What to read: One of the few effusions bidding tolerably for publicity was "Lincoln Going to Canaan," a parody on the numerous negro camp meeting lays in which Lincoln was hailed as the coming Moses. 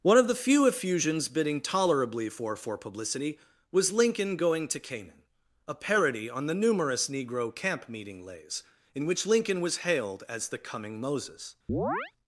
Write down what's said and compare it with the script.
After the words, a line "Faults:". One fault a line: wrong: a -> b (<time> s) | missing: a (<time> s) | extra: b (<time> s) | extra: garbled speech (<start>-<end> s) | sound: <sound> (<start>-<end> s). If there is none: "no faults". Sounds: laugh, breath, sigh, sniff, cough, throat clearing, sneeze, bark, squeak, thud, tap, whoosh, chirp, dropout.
One of the few effusions bidding tolerably for for publicity was "Lincoln Going to Canaan," a parody on the numerous negro camp meeting lays in which Lincoln was hailed as the coming Moses.
Faults:
extra: for (2.5 s)
sound: chirp (11.7-12.1 s)